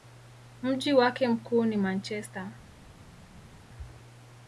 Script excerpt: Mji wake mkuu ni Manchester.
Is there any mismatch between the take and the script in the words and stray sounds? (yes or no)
no